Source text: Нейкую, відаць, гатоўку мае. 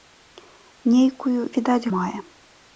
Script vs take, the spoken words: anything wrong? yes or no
yes